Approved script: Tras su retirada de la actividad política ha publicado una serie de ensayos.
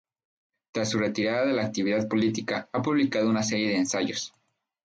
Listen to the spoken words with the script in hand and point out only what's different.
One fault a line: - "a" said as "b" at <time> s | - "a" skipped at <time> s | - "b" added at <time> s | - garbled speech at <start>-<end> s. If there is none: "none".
none